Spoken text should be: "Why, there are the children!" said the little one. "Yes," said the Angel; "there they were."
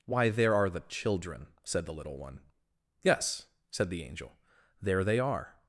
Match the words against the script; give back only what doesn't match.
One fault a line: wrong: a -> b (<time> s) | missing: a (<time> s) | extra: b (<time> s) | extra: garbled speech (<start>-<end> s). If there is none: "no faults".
wrong: were -> are (5.2 s)